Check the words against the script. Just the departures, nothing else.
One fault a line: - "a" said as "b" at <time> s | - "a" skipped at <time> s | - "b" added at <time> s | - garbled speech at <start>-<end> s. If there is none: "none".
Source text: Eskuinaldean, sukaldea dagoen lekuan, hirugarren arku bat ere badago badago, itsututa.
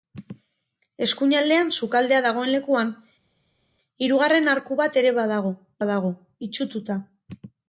none